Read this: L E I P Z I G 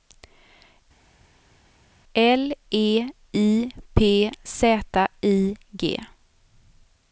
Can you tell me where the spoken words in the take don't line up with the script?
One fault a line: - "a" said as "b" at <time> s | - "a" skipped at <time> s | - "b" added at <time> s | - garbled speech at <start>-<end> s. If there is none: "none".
none